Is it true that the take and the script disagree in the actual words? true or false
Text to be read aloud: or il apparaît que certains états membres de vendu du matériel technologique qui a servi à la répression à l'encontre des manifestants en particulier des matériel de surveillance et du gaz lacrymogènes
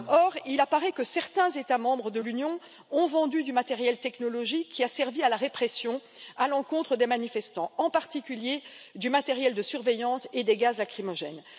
true